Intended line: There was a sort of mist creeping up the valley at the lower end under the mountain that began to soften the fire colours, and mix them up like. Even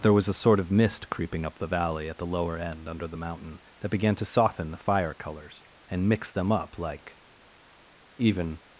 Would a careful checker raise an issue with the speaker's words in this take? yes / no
no